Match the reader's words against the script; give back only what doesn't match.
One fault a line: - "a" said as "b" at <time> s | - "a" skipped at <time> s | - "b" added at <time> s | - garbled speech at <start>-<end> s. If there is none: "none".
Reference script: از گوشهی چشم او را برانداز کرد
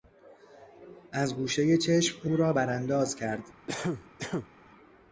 none